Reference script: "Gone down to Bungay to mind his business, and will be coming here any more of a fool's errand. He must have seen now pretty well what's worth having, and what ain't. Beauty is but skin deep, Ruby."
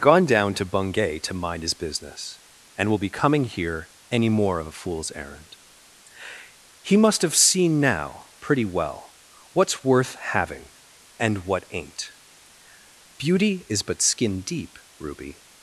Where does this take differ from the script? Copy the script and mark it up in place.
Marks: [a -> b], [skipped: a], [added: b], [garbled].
"Gone down to Bungay to mind his business, and will be coming here any more of a fool's errand. He must have seen now pretty well what's worth having, and what ain't. Beauty is but skin deep, Ruby."